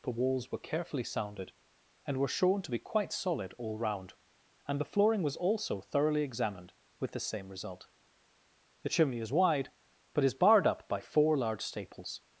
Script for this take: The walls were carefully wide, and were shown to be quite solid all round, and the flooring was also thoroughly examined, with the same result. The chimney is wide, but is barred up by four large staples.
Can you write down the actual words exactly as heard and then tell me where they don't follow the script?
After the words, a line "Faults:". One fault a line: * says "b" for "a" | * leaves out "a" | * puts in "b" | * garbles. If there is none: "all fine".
The walls were carefully sounded, and were shown to be quite solid all round, and the flooring was also thoroughly examined, with the same result. The chimney is wide, but is barred up by four large staples.
Faults:
* says "sounded" for "wide"